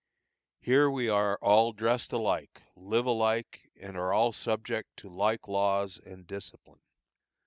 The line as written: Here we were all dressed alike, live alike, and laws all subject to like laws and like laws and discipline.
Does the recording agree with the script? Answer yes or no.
no